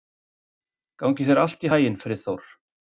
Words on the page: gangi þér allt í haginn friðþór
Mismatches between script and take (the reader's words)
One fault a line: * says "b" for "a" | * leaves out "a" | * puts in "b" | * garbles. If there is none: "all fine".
all fine